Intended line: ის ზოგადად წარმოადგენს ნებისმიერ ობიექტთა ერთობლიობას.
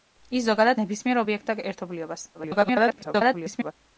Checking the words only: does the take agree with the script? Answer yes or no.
no